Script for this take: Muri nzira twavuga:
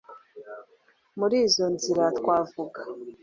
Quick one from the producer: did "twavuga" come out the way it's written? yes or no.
yes